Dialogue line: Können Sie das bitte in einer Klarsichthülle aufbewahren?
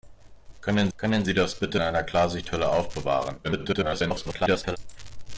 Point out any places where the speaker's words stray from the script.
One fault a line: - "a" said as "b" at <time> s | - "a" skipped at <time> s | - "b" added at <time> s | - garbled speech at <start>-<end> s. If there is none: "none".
- "können" added at 1.0 s
- "in" skipped at 1.8 s
- garbled speech at 3.4-4.8 s